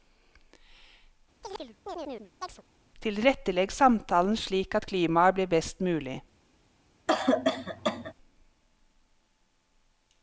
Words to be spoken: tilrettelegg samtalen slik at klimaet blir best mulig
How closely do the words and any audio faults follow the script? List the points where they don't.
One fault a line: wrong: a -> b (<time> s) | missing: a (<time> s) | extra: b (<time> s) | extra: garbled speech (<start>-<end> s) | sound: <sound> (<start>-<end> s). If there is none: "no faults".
sound: chirp (1.4-2.6 s)
sound: cough (7.1-8.1 s)